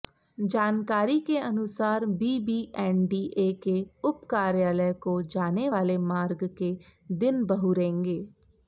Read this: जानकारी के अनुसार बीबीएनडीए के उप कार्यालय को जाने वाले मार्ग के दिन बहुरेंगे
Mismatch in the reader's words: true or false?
false